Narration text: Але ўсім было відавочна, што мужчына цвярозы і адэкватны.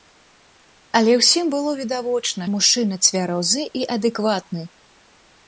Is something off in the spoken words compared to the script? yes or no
yes